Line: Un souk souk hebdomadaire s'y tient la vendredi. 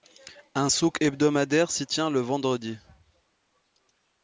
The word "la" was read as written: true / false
false